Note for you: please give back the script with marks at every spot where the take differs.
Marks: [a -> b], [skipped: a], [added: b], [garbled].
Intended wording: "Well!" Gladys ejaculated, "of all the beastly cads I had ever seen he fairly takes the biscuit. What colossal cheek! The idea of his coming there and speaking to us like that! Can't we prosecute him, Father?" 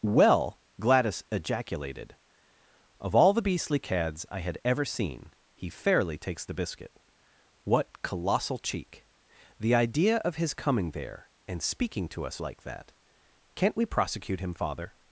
"Well!" Gladys ejaculated, "of all the beastly cads I had ever seen he fairly takes the biscuit. What colossal cheek! The idea of his coming there and speaking to us like that! Can't we prosecute him, Father?"